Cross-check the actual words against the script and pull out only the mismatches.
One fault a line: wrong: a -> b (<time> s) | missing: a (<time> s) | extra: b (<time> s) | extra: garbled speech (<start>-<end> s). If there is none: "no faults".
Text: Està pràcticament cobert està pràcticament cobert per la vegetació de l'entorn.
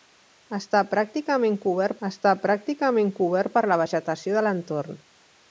no faults